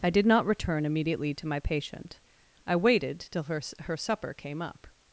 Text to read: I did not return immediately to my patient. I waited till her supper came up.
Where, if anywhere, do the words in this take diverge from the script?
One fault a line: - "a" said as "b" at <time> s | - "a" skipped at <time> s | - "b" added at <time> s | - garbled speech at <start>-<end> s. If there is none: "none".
- "her" added at 3.8 s